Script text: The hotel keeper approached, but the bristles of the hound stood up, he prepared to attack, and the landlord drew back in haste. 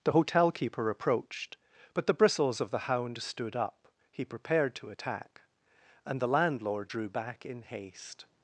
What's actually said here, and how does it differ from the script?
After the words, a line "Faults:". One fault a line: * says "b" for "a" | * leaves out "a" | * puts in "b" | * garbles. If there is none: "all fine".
The hotel keeper approached, but the bristles of the hound stood up, he prepared to attack, and the landlord drew back in haste.
Faults:
all fine